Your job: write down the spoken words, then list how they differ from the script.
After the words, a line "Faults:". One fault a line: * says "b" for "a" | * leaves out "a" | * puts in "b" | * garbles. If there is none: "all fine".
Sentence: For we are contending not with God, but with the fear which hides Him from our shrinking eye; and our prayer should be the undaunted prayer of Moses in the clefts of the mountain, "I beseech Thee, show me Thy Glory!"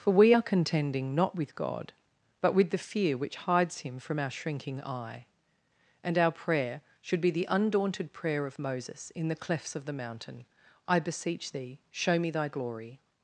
For we are contending not with God, but with the fear which hides Him from our shrinking eye; and our prayer should be the undaunted prayer of Moses in the clefts of the mountain, "I beseech Thee, show me Thy Glory!"
Faults:
all fine